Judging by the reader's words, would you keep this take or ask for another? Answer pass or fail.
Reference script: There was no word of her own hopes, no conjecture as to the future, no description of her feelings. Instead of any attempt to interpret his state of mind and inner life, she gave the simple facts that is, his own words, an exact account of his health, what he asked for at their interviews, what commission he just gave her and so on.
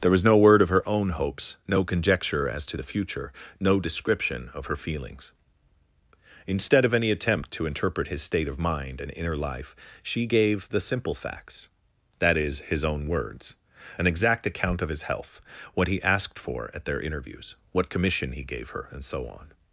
fail